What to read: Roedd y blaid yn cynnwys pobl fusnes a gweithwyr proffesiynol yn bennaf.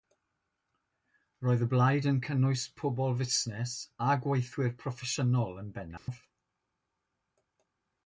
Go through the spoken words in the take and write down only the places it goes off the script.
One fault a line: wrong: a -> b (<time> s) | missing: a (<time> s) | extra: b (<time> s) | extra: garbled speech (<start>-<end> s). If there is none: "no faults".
no faults